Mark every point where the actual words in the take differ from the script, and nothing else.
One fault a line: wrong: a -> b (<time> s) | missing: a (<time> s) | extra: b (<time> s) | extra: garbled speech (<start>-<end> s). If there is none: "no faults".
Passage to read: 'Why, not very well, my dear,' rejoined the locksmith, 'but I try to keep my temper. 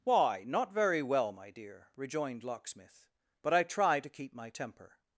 missing: the (2.4 s)